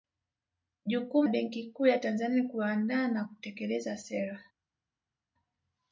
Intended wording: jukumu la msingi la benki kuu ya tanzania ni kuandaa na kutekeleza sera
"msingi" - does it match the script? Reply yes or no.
no